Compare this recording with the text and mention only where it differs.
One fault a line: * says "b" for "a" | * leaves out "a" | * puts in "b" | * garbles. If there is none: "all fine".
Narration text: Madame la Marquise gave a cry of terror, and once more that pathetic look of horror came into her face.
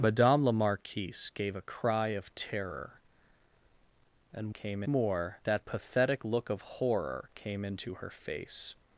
* says "came" for "once"